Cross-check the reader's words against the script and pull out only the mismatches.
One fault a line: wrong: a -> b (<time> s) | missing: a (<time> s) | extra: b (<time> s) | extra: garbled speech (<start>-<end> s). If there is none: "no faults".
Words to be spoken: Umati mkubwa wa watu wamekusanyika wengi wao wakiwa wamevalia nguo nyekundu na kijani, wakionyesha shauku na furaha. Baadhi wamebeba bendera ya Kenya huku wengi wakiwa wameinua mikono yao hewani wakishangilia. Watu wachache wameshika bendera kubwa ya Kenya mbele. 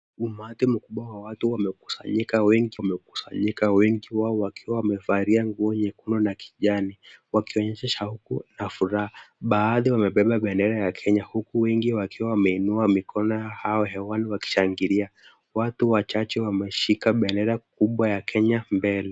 extra: wamekusanyika wengi (2.8 s)